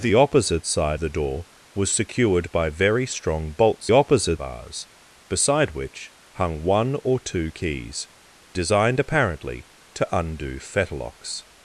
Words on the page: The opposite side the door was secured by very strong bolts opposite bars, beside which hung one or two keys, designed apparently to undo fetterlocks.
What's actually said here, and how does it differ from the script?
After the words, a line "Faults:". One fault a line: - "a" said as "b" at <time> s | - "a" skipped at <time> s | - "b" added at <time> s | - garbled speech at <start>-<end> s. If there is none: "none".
The opposite side the door was secured by very strong bolts opposite bars, beside which hung one or two keys, designed apparently to undo fetterlocks.
Faults:
none